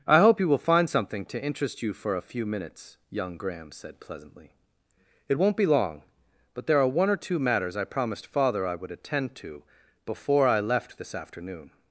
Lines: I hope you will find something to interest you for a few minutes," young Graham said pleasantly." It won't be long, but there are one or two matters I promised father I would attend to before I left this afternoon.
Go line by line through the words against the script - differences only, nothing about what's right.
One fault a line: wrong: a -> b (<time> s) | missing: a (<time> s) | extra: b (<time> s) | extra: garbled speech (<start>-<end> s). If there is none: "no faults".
no faults